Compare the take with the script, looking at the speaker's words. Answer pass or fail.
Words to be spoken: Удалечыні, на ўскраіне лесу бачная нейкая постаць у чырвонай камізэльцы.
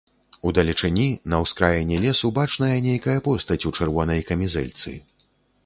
pass